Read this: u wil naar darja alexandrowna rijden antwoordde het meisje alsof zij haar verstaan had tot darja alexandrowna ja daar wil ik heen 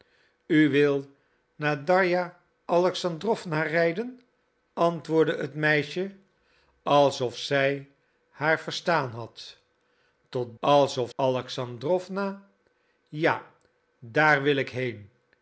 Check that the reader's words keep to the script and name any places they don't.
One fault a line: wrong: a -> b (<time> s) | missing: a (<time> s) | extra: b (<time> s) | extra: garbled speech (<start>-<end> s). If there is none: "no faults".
wrong: darja -> alsof (10.6 s)